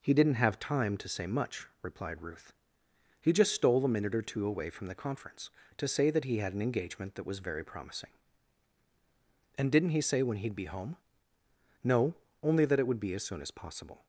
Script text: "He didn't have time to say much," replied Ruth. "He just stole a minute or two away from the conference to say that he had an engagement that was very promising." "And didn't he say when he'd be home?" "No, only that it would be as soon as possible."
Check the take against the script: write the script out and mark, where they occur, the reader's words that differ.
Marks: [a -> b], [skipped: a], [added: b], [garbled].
"He didn't have time to say much," replied Ruth. "He just stole a minute or two away from the conference to say that he had an engagement that was very promising." "And didn't he say when he'd be home?" "No, only that it would be as soon as possible."